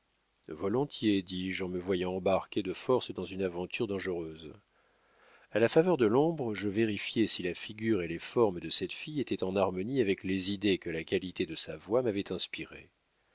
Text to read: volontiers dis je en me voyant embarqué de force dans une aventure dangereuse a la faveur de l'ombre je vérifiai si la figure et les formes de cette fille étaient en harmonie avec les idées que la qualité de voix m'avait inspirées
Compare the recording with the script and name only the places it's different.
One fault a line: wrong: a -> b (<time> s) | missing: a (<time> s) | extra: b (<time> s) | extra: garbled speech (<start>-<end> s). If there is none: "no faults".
extra: sa (11.5 s)